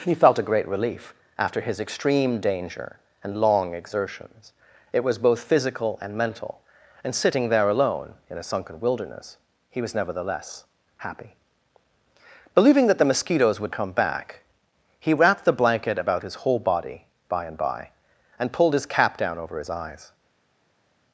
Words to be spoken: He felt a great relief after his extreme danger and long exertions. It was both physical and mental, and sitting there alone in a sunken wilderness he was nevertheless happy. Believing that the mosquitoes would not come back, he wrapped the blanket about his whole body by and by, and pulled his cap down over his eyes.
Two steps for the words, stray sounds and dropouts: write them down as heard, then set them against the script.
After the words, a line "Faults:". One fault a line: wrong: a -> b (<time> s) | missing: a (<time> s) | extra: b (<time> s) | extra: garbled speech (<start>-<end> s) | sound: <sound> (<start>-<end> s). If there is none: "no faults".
He felt a great relief after his extreme danger and long exertions. It was both physical and mental, and sitting there alone in a sunken wilderness he was nevertheless happy. Believing that the mosquitoes would come back, he wrapped the blanket about his whole body by and by, and pulled his cap down over his eyes.
Faults:
missing: not (13.7 s)